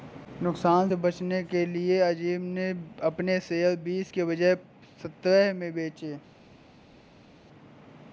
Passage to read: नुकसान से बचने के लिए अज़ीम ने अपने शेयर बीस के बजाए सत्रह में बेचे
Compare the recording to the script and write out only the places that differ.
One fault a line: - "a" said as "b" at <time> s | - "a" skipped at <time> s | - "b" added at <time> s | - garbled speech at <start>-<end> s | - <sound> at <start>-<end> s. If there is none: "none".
none